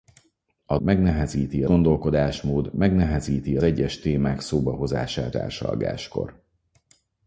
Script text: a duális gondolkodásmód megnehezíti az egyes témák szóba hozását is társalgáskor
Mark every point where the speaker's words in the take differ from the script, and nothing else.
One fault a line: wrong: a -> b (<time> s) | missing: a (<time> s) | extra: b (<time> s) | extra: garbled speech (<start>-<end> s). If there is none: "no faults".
wrong: duális -> megnehezíti (0.8 s)
missing: az (3.6 s)
missing: is (5.4 s)